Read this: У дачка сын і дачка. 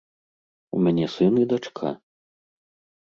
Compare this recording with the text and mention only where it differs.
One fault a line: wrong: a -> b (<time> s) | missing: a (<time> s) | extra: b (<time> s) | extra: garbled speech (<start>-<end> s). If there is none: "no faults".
wrong: дачка -> мяне (0.9 s)